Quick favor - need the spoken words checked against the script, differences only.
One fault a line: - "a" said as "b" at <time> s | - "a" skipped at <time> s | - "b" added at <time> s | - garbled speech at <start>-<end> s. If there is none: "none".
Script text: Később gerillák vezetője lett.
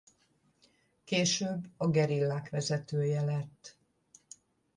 - "a" added at 1.8 s